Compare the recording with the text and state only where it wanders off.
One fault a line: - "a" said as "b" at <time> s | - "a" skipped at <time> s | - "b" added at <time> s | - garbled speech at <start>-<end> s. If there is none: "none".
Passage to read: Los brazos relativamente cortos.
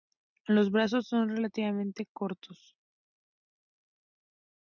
- "son" added at 1.1 s